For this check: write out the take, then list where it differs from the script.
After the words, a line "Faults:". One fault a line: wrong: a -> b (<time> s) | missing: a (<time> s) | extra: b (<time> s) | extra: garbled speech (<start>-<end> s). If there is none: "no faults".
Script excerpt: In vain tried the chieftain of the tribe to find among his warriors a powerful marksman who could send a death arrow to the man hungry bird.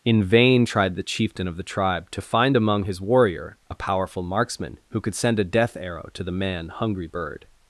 In vain tried the chieftain of the tribe to find among his warrior a powerful marksman who could send a death arrow to the man hungry bird.
Faults:
wrong: warriors -> warrior (3.0 s)